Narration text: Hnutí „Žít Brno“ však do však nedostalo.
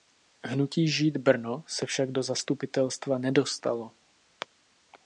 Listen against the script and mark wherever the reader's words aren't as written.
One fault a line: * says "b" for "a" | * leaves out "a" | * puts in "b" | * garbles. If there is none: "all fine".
* puts in "se"
* says "zastupitelstva" for "však"